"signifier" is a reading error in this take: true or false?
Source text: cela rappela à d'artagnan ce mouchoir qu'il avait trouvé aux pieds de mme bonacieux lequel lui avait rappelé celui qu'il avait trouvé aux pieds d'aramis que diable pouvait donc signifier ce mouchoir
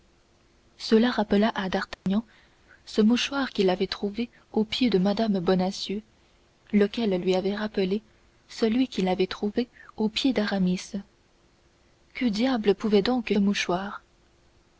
true